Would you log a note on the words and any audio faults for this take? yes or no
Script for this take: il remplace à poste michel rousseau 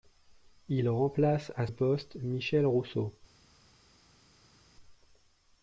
no